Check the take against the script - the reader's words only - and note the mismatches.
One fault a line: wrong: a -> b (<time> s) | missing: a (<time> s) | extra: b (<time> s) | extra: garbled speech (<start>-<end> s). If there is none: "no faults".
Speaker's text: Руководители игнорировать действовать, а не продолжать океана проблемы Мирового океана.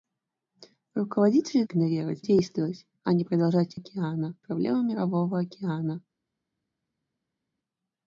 no faults